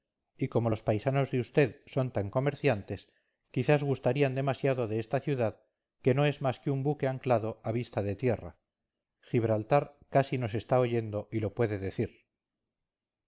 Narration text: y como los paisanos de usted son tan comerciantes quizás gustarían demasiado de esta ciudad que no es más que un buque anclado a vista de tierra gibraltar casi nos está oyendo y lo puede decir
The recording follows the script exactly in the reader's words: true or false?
true